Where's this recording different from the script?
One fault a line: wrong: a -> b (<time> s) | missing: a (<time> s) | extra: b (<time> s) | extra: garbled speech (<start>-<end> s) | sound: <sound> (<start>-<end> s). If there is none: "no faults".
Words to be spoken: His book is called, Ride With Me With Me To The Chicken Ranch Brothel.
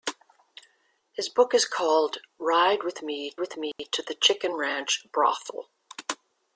sound: dropout (3.7-3.8 s)